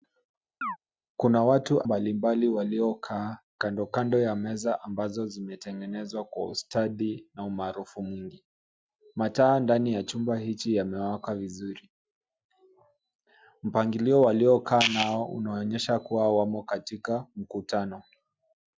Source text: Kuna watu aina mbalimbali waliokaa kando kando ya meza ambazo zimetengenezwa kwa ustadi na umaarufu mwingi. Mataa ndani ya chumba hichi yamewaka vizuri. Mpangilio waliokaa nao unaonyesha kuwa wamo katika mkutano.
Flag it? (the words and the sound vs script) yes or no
yes